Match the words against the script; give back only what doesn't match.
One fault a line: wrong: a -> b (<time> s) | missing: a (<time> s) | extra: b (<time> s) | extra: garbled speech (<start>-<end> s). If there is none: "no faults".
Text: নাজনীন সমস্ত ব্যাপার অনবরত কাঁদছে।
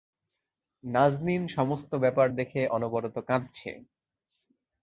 extra: দেখে (2.4 s)